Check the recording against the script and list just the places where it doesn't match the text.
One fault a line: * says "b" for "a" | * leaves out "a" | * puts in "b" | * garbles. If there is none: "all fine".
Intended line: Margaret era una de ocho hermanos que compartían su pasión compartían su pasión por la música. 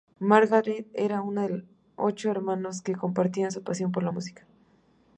* leaves out "compartían su pasión"